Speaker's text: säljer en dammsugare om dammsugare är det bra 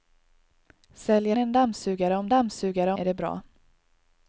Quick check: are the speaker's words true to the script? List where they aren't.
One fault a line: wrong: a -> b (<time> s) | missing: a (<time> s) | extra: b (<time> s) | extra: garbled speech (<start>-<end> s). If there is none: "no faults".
no faults